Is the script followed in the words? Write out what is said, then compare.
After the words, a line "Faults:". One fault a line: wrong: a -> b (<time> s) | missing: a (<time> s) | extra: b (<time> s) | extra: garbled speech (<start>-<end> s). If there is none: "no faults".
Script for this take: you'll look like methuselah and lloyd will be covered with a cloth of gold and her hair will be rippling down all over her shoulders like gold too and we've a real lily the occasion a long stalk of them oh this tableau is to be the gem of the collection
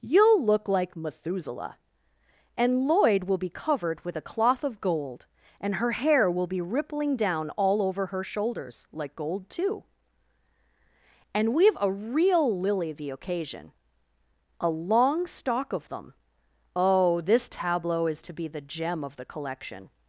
you'll look like methuselah and lloyd will be covered with a cloth of gold and her hair will be rippling down all over her shoulders like gold too and we've a real lily the occasion a long stalk of them oh this tableau is to be the gem of the collection
Faults:
no faults